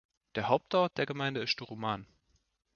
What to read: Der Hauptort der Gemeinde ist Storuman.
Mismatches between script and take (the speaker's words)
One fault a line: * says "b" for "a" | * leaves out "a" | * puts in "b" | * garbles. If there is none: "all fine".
all fine